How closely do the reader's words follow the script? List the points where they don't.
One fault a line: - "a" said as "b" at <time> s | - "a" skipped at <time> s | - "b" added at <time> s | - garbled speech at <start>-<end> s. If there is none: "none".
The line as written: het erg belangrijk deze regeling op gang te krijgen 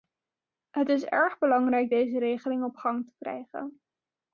- "is" added at 0.9 s